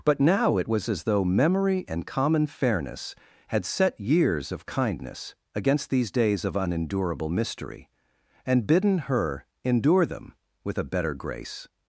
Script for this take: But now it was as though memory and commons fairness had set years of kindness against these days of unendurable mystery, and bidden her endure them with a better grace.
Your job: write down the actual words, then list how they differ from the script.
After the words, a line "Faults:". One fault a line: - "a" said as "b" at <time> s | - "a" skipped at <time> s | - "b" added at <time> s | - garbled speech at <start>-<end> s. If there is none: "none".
But now it was as though memory and common fairness had set years of kindness against these days of unendurable mystery, and bidden her endure them with a better grace.
Faults:
- "commons" said as "common" at 2.1 s